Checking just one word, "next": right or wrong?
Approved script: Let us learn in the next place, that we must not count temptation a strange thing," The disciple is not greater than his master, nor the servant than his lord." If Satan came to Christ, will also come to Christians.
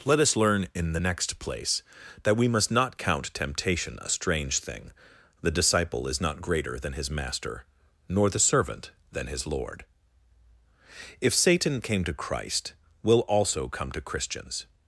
right